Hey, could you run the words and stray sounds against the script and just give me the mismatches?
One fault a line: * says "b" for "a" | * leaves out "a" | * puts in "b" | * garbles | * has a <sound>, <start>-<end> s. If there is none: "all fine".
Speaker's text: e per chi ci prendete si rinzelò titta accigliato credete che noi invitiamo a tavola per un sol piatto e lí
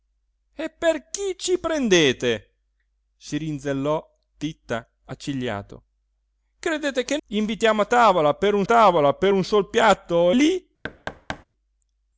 * leaves out "noi"
* puts in "tavola per un"
* leaves out "e"
* has a thud, 10.8-11.4 s